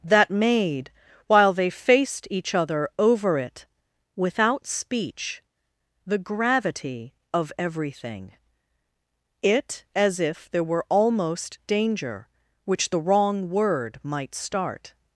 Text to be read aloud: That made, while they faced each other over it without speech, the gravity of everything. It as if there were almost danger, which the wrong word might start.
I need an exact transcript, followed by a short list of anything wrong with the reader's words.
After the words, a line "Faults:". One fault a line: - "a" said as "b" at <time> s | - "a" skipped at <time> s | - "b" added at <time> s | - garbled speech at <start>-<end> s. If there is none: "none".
That made, while they faced each other over it without speech, the gravity of everything. It as if there were almost danger, which the wrong word might start.
Faults:
none